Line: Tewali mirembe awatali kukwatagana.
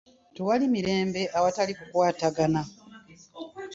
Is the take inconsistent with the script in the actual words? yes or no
no